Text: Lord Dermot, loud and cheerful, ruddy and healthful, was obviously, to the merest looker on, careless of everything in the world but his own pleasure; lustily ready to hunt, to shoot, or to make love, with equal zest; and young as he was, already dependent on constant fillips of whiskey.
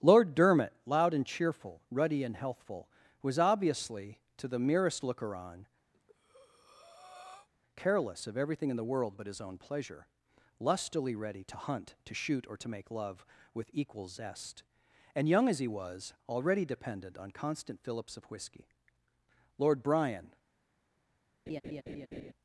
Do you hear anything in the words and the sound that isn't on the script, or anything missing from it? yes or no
yes